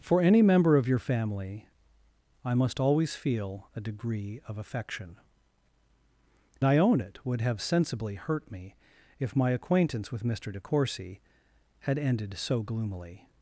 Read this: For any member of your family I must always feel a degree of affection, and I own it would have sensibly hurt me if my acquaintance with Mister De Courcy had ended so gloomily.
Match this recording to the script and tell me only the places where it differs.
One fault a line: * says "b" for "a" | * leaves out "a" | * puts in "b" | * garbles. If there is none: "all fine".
* leaves out "and"